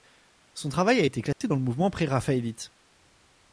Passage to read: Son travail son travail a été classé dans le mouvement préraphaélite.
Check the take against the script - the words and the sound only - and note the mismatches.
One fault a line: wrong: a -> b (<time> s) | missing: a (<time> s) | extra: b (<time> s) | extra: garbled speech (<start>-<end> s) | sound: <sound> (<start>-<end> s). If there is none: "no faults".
missing: son travail (1.0 s)
sound: dropout (1.3-1.4 s)